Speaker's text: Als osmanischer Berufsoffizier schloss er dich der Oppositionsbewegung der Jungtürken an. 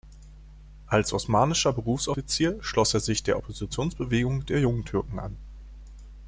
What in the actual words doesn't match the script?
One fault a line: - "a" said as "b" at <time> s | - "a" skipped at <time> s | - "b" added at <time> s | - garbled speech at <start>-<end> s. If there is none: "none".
- "dich" said as "sich" at 3.0 s